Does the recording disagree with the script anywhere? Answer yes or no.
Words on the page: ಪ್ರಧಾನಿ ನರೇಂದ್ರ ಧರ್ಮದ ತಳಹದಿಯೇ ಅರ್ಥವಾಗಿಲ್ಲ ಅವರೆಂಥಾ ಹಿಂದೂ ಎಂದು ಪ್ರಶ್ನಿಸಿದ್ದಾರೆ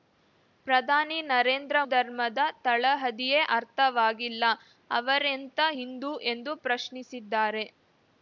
no